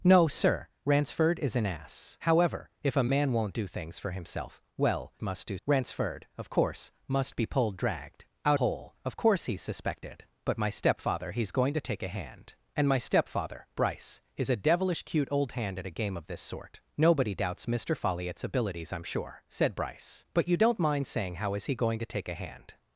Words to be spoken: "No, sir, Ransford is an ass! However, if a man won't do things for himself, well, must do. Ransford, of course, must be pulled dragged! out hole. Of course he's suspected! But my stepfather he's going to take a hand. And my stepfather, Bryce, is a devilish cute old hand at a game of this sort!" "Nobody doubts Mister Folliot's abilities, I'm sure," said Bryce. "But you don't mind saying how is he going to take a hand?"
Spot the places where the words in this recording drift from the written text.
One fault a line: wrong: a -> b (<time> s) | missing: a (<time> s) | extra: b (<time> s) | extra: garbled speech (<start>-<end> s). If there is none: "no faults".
no faults